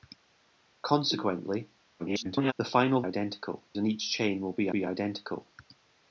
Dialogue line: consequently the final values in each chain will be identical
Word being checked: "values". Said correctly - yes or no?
no